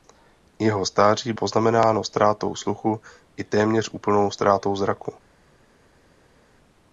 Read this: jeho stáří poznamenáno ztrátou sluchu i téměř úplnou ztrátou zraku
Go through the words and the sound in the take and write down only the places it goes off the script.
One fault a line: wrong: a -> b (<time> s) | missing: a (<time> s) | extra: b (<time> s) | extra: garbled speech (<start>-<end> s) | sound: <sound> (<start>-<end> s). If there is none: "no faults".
no faults